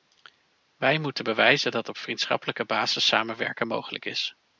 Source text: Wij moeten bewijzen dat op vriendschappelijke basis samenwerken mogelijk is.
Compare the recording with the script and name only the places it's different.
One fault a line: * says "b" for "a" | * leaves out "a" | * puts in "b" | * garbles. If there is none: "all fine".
all fine